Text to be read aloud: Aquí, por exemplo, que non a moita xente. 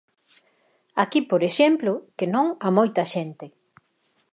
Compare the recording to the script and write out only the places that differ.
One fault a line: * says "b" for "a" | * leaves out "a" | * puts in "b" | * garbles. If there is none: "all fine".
all fine